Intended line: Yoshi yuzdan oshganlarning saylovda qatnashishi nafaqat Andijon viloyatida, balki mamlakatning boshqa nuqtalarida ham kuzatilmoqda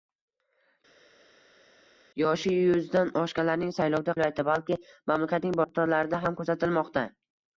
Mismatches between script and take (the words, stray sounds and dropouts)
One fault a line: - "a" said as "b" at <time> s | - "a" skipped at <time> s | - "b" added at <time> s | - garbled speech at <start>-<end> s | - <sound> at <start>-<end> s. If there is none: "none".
- "qatnashishi nafaqat Andijon" skipped at 4.1 s
- "boshqa" skipped at 5.6 s